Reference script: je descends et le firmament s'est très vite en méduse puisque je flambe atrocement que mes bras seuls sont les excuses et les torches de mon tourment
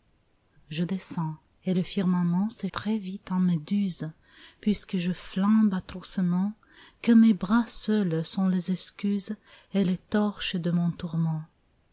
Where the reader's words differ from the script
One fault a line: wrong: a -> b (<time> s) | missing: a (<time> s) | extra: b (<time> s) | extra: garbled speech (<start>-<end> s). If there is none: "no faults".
no faults